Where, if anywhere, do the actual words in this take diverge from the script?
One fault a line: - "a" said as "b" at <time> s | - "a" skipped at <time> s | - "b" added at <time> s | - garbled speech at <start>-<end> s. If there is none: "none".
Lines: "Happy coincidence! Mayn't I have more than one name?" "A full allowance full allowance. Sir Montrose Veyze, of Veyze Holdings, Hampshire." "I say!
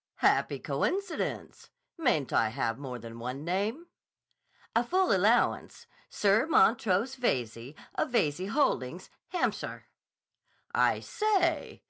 - "full allowance" skipped at 5.9 s